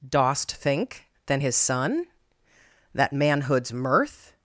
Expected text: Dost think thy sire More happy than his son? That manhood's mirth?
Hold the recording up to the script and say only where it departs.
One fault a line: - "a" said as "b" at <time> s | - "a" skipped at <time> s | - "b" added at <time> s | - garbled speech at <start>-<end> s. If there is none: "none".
- "thy sire More happy" skipped at 1.1 s